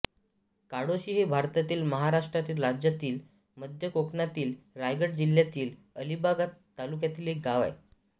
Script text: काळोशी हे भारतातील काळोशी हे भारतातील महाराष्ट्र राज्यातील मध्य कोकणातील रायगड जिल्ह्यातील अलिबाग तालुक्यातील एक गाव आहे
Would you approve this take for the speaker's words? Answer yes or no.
no